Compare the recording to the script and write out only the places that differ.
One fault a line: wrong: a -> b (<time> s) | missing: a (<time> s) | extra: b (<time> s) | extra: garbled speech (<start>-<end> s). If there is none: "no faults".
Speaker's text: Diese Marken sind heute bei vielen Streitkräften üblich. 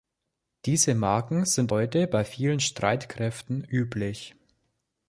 no faults